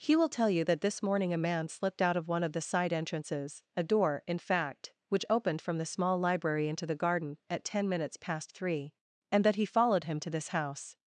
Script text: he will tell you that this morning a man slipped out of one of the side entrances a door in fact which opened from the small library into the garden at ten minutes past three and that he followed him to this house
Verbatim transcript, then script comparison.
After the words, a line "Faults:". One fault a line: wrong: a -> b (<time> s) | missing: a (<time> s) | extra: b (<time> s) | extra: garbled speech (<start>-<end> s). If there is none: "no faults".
he will tell you that this morning a man slipped out of one of the side entrances a door in fact which opened from the small library into the garden at ten minutes past three and that he followed him to this house
Faults:
no faults